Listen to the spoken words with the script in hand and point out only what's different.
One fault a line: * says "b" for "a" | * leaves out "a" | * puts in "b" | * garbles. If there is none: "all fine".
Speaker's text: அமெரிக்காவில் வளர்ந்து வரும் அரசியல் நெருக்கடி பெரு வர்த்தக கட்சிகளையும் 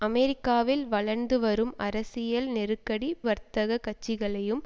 * leaves out "பெரு"